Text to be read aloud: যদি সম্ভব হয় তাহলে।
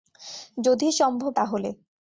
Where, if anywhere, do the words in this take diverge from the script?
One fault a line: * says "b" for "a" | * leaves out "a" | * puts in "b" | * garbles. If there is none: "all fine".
* leaves out "হয়"